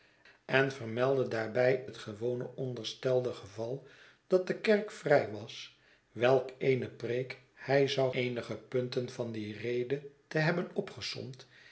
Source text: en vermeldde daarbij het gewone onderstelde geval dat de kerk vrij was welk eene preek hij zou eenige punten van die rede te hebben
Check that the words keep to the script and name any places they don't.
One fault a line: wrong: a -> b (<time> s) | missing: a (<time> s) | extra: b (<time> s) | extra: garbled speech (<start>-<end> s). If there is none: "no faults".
no faults